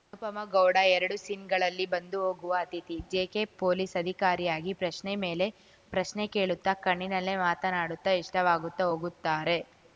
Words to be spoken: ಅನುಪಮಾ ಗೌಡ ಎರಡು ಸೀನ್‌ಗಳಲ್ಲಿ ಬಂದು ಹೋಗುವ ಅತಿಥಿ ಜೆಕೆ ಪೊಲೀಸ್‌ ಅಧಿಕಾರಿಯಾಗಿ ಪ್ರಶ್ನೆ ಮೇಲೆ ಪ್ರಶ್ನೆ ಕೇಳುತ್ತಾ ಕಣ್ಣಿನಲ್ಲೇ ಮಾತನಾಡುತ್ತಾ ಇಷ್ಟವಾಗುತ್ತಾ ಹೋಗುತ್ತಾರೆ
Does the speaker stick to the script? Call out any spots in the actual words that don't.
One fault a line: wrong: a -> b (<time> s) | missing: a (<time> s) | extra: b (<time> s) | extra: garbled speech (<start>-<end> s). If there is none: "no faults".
no faults